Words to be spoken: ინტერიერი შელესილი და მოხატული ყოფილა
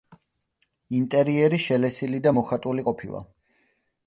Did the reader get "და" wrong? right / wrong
right